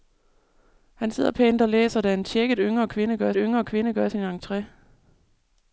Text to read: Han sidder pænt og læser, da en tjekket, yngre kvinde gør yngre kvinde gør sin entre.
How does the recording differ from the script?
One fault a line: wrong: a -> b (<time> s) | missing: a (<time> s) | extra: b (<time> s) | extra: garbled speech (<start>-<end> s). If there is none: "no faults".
no faults